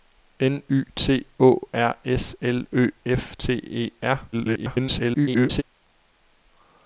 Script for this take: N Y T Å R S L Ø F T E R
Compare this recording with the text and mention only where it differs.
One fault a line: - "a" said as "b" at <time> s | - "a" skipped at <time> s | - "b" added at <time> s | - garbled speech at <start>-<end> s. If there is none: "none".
- garbled speech at 4.3-5.6 s